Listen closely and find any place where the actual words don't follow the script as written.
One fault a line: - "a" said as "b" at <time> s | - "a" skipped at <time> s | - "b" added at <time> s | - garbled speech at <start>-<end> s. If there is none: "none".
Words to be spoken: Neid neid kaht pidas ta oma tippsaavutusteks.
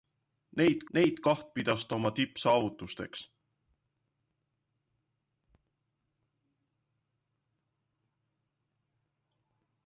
none